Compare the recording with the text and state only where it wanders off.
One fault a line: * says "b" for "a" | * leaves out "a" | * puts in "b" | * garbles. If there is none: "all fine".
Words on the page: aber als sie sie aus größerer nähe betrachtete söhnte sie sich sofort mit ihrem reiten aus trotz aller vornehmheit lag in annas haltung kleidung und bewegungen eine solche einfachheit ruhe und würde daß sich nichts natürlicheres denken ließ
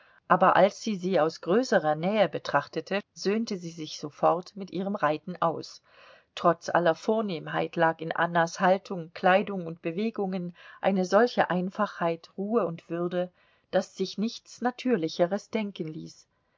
all fine